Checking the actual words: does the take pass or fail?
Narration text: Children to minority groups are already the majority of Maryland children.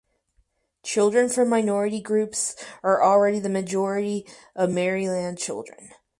fail